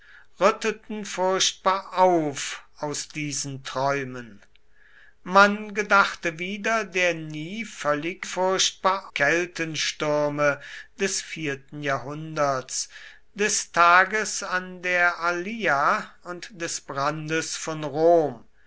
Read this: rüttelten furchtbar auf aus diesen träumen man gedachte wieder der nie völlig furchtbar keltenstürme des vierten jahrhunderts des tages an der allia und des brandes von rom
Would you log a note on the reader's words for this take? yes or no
no